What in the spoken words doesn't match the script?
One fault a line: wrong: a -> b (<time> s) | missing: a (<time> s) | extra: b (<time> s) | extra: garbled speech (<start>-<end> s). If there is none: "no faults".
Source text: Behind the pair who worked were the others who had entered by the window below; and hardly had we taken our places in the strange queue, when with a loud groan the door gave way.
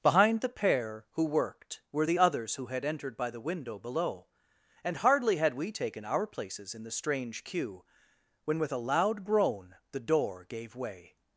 no faults